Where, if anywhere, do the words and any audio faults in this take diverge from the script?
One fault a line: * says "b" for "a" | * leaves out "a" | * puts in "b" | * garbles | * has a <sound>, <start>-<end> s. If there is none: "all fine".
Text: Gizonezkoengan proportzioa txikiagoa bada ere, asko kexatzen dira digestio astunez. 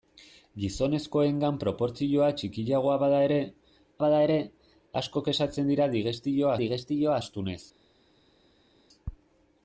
* puts in "bada ere"
* puts in "digestio"